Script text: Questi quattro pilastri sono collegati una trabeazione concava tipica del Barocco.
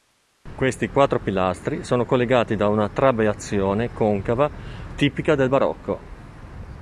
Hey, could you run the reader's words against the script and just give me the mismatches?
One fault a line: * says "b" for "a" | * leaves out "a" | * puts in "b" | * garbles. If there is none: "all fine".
* puts in "da"